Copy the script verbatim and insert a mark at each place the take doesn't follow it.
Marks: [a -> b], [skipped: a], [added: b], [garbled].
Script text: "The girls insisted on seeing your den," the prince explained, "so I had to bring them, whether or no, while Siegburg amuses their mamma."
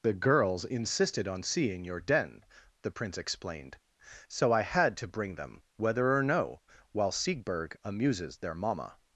"The girls insisted on seeing your den," the prince explained, "so I had to bring them, whether or no, while Siegburg amuses their mamma."